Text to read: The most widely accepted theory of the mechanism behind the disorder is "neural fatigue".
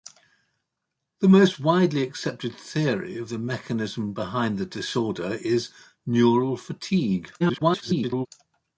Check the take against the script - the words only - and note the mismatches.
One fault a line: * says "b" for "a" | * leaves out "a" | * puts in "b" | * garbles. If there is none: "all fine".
* garbles